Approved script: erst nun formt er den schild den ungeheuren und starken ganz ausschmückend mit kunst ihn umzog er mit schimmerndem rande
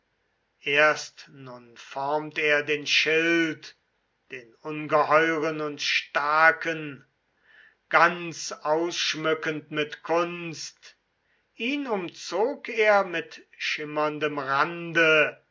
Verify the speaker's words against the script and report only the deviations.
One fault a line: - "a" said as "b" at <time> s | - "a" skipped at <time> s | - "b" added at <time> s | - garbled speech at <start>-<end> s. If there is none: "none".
none